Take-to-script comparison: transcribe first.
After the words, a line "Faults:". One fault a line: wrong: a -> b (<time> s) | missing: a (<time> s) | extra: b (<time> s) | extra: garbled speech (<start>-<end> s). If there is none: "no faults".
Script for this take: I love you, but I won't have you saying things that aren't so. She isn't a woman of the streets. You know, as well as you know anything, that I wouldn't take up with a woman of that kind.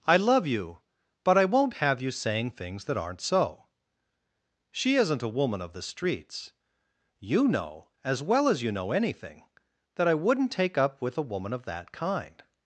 I love you, but I won't have you saying things that aren't so. She isn't a woman of the streets. You know, as well as you know anything, that I wouldn't take up with a woman of that kind.
Faults:
no faults